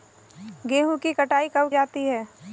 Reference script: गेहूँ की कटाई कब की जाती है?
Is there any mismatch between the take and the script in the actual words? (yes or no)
yes